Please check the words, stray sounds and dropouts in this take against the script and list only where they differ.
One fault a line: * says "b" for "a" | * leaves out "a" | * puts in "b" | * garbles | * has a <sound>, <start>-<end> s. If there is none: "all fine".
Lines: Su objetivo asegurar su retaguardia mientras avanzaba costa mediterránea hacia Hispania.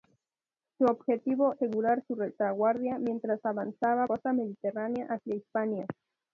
all fine